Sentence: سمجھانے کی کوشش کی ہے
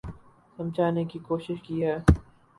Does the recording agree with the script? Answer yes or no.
yes